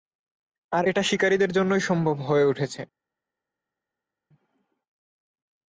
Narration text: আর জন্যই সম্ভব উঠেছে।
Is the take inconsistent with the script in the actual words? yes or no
yes